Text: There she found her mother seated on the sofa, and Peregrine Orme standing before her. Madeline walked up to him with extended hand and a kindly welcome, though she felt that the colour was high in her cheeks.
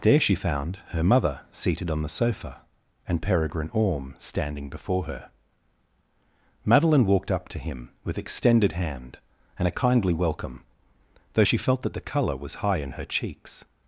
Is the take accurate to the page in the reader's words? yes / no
yes